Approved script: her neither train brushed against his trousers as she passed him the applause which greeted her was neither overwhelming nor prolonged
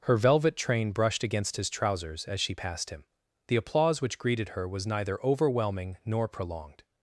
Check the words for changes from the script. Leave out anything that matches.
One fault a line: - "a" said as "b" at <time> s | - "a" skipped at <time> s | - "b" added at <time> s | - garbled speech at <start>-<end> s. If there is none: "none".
- "neither" said as "velvet" at 0.2 s